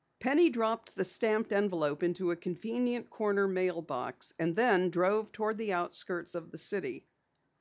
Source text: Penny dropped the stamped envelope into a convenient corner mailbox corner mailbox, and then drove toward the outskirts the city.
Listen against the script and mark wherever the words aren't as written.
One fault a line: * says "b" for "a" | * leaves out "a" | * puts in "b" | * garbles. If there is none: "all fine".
* leaves out "corner mailbox"
* puts in "of"